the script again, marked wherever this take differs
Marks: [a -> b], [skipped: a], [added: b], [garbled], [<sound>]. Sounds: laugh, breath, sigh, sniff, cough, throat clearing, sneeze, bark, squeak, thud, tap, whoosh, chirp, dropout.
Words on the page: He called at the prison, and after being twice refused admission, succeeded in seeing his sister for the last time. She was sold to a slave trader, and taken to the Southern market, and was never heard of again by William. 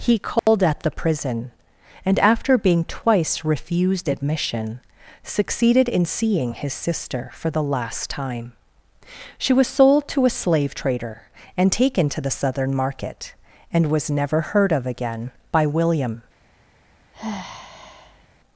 He called [dropout] at the prison, and after being twice refused admission, succeeded in seeing his sister for the last time. She was sold to a slave trader, and taken to the Southern market, and was never heard of again by William. [sigh]